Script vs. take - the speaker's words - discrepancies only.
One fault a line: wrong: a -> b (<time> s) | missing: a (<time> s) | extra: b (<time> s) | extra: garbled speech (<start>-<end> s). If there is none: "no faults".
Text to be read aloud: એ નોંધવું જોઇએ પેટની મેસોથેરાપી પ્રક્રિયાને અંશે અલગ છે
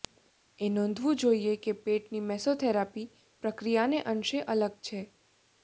extra: કે (1.6 s)